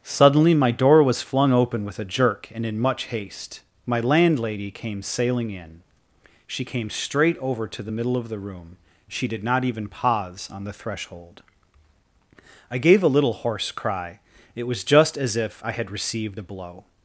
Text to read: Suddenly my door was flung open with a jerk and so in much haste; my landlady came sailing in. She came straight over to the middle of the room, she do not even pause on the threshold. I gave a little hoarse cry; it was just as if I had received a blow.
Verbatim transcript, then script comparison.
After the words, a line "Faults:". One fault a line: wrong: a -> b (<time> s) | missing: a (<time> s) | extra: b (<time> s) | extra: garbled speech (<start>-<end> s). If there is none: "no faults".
Suddenly my door was flung open with a jerk and in much haste; my landlady came sailing in. She came straight over to the middle of the room, she did not even pause on the threshold. I gave a little hoarse cry; it was just as if I had received a blow.
Faults:
missing: so (2.6 s)
wrong: do -> did (9.3 s)